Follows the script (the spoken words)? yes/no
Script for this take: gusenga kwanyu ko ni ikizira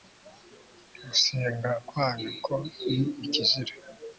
yes